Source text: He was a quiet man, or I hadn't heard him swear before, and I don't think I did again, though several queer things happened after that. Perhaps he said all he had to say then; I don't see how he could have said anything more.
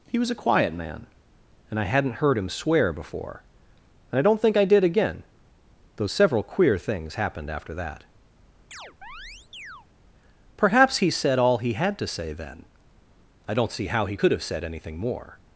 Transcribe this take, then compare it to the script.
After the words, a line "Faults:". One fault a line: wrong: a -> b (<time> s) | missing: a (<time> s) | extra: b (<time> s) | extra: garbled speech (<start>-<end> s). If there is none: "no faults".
He was a quiet man, and I hadn't heard him swear before, and I don't think I did again, though several queer things happened after that. Perhaps he said all he had to say then; I don't see how he could have said anything more.
Faults:
wrong: or -> and (1.7 s)